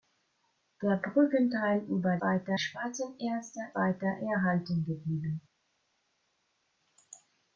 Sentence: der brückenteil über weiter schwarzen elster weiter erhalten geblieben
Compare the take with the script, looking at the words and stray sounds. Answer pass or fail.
pass